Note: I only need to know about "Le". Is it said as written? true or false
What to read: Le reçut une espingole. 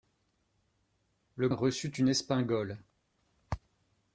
true